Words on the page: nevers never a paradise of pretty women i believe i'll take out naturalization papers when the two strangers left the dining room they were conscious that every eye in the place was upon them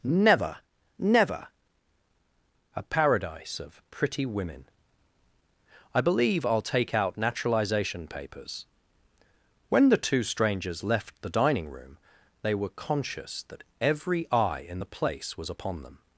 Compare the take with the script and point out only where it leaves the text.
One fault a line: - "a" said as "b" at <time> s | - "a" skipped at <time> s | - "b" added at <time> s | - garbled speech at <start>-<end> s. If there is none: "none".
- "nevers" said as "never" at 0.0 s